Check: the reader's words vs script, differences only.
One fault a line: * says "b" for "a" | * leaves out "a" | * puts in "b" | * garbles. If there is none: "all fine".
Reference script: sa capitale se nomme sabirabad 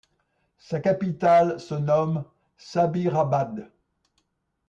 all fine